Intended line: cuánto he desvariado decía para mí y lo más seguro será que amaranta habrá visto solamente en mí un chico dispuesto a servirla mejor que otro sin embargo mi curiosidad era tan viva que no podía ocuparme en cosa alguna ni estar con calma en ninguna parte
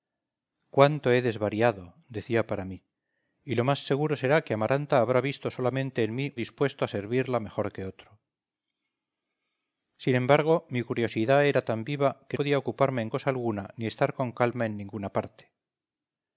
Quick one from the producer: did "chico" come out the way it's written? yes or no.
no